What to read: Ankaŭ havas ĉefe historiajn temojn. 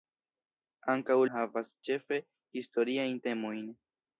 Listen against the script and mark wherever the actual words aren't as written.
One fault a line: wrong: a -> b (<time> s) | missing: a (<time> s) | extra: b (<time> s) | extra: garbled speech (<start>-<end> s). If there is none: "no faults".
no faults